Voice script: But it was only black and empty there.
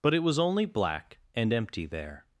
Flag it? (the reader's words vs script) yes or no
no